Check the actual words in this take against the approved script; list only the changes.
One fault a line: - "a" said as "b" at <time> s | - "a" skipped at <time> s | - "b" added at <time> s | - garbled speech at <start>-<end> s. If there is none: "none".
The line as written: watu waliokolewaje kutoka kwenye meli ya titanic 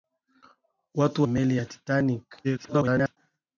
- "waliokolewaje kutoka kwenye" skipped at 1.2 s
- garbled speech at 2.4-3.2 s